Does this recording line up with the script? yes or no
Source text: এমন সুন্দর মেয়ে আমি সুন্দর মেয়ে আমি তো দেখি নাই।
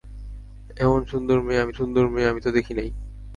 yes